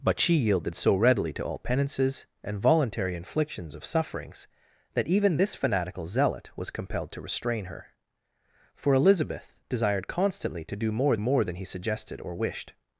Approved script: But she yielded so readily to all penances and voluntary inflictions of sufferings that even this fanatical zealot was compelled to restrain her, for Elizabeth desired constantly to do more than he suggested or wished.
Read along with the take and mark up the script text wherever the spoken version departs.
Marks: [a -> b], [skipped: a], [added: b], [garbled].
But she yielded so readily to all penances and voluntary inflictions of sufferings that even this fanatical zealot was compelled to restrain her, for Elizabeth desired constantly to do more [added: more] than he suggested or wished.